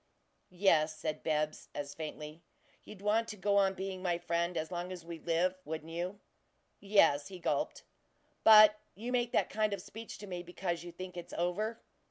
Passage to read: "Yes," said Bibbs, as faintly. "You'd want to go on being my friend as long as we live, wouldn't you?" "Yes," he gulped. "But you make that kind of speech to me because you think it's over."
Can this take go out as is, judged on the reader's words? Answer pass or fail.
pass